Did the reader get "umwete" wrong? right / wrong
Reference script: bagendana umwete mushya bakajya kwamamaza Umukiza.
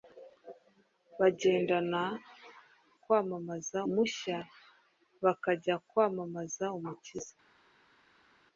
wrong